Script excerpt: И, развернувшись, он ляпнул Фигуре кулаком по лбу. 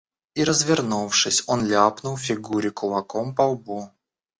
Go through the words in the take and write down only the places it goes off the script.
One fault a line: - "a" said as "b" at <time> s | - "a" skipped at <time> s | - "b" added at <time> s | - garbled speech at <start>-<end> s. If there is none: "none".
none